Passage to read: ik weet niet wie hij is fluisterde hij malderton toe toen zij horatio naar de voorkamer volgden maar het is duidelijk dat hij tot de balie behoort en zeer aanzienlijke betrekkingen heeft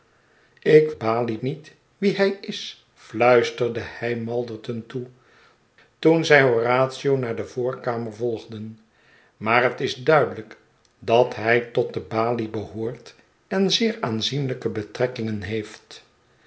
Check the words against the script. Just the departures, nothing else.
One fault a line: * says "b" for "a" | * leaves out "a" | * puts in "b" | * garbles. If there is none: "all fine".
* says "balie" for "weet"